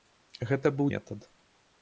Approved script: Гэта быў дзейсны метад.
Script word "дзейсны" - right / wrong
wrong